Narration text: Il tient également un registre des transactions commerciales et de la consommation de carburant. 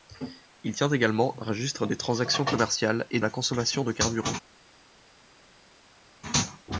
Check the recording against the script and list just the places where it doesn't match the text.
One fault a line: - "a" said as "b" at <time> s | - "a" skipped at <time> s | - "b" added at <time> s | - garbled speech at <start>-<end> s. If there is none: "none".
- "de" skipped at 3.2 s